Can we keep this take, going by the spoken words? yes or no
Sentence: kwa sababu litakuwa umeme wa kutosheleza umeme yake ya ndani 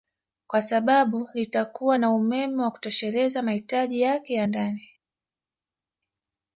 no